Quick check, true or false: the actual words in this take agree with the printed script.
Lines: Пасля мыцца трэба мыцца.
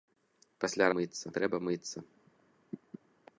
true